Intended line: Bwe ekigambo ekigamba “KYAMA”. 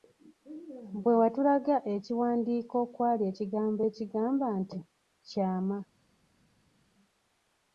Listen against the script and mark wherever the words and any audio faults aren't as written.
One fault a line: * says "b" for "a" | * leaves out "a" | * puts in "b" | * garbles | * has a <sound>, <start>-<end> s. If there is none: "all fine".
* puts in "watulaga ekiwandiiko okwali"
* puts in "nti"